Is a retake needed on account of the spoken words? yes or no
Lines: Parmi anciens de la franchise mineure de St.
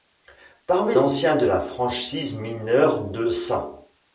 no